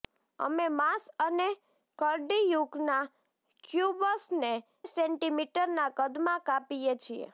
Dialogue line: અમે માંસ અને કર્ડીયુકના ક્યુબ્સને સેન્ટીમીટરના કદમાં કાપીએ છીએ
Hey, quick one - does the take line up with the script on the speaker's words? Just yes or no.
yes